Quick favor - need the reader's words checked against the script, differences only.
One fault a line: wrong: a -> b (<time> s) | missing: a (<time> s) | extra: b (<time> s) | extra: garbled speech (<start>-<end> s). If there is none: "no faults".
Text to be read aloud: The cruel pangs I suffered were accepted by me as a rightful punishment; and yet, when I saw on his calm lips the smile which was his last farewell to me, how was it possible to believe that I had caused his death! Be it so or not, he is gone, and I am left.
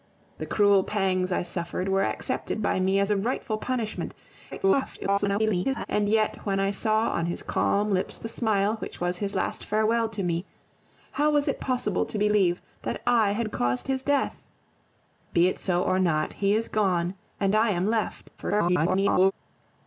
extra: garbled speech (4.5-5.9 s)
extra: garbled speech (18.4-19.3 s)